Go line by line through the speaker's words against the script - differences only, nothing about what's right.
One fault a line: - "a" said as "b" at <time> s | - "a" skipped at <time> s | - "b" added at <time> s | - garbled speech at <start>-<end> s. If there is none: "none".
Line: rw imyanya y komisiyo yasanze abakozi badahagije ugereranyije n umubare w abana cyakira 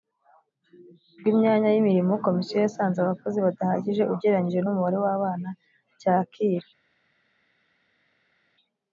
- "imirimo" added at 1.8 s